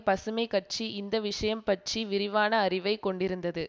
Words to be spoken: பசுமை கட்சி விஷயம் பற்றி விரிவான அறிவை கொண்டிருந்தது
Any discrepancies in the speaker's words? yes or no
yes